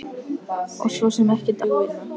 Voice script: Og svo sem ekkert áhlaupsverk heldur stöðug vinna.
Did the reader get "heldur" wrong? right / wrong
wrong